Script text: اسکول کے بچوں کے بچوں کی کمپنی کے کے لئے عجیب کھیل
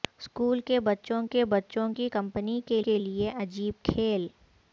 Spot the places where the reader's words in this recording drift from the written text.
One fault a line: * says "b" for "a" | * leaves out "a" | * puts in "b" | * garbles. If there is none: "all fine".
all fine